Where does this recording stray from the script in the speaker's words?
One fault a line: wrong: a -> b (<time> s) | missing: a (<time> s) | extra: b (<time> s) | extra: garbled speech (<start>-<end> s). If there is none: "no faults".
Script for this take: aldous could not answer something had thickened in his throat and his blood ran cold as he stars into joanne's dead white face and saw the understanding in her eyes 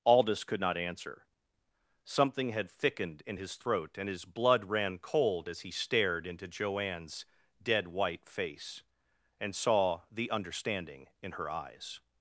wrong: stars -> stared (5.7 s)